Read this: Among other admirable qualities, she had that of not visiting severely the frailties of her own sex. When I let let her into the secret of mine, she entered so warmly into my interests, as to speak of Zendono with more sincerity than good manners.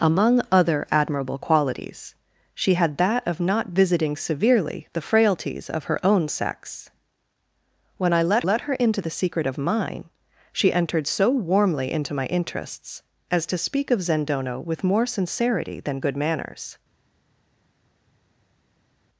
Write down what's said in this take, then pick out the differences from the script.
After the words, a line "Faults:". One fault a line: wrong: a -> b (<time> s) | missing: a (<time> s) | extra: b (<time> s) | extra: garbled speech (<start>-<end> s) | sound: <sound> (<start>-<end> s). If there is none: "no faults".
Among other admirable qualities, she had that of not visiting severely the frailties of her own sex. When I let let her into the secret of mine, she entered so warmly into my interests, as to speak of Zendono with more sincerity than good manners.
Faults:
no faults